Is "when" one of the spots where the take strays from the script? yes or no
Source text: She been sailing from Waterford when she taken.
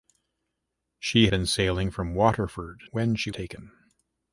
no